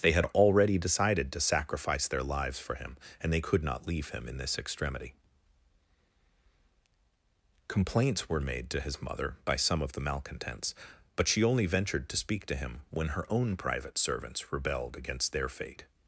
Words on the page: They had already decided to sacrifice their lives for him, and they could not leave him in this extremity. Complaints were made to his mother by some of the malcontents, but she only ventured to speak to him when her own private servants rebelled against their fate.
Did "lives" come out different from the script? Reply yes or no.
no